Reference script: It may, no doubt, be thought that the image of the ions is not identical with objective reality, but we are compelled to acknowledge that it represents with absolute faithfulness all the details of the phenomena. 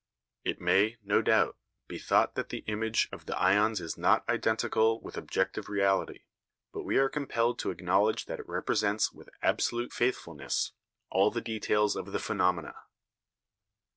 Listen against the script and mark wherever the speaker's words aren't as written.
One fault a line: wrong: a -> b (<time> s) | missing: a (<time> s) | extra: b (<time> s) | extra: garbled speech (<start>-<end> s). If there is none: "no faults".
no faults